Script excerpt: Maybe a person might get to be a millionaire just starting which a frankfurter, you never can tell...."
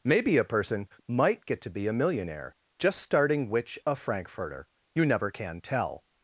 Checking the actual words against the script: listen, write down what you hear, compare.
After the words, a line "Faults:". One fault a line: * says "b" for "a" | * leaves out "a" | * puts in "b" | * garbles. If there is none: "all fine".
Maybe a person might get to be a millionaire just starting which a frankfurter, you never can tell...."
Faults:
all fine